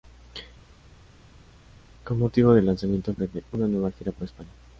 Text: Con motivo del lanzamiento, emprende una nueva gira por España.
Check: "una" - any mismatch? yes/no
no